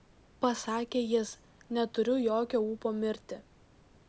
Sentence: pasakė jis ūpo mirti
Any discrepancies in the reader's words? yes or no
yes